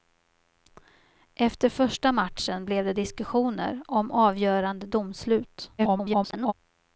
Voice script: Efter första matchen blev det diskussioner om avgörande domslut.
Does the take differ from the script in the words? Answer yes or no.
yes